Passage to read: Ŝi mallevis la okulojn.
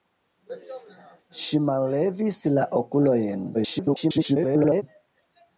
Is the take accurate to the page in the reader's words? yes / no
no